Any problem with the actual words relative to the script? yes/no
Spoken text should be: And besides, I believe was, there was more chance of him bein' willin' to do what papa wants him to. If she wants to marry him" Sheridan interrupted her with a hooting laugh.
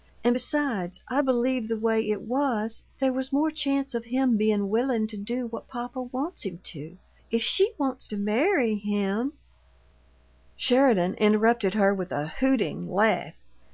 yes